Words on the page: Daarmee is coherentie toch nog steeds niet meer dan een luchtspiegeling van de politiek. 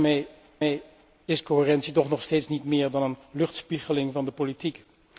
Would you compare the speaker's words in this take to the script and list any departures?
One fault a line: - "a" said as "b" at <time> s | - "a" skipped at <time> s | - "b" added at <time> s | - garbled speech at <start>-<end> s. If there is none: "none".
- "daarmee" added at 0.6 s